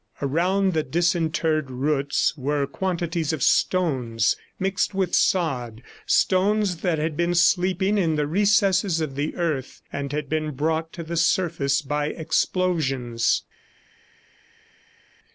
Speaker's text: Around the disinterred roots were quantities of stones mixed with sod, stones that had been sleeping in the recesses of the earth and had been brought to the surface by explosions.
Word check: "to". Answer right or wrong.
right